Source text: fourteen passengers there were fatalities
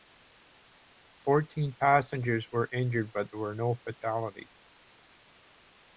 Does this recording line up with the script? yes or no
no